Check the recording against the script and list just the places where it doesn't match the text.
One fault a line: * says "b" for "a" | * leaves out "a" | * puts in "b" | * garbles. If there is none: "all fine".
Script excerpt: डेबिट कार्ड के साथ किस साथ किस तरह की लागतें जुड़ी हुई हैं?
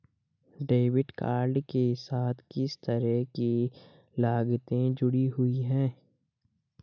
* leaves out "साथ किस"